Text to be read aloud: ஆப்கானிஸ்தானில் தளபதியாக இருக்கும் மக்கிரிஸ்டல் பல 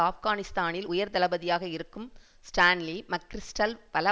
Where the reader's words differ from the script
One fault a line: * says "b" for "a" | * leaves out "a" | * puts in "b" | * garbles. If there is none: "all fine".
* puts in "உயர்"
* puts in "ஸ்டான்லி"